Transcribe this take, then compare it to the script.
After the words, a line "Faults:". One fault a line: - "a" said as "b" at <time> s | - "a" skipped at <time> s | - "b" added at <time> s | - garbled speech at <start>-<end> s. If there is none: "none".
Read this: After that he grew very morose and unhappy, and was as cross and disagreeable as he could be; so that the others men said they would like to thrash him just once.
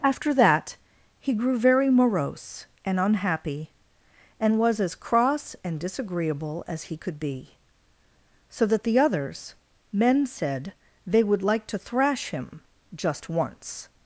After that he grew very morose and unhappy, and was as cross and disagreeable as he could be; so that the others men said they would like to thrash him just once.
Faults:
none